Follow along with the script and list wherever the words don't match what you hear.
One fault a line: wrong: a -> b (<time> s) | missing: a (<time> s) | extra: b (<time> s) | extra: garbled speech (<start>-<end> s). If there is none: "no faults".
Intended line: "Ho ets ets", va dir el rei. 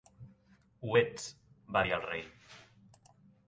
missing: ets (1.3 s)